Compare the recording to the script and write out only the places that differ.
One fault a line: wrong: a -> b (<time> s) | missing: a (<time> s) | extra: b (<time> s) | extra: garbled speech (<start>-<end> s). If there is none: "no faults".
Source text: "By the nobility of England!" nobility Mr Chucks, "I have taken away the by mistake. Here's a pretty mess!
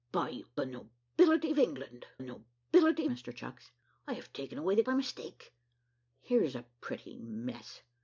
no faults